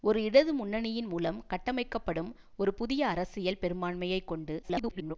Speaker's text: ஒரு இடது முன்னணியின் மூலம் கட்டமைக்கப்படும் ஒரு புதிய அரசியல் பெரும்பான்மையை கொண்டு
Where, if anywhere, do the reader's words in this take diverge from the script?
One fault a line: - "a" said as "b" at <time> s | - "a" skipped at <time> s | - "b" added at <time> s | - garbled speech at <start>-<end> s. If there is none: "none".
- garbled speech at 4.6-5.2 s